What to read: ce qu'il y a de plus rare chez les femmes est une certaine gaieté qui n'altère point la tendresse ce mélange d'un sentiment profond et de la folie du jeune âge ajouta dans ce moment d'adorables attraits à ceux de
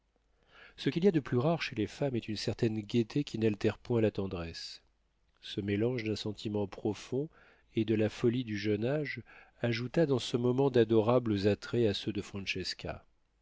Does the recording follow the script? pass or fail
pass